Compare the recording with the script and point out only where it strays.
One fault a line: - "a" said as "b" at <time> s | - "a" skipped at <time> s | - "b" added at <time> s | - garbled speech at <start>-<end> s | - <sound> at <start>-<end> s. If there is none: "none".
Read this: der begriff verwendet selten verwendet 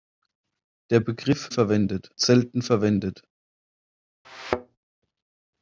- thud at 4.2-4.8 s